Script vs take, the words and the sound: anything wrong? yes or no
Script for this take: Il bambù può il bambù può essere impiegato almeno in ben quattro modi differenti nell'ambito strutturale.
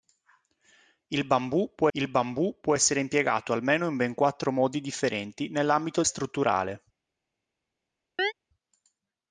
yes